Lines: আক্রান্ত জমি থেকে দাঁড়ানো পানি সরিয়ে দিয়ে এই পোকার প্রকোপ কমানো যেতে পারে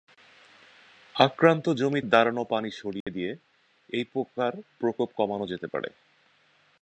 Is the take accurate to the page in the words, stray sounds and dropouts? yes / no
no